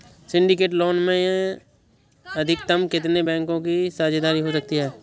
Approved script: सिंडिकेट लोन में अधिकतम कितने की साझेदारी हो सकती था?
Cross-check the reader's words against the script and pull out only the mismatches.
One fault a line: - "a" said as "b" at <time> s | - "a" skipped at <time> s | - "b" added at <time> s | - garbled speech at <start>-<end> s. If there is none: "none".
- "बैंकों" added at 3.2 s
- "था" said as "है" at 4.7 s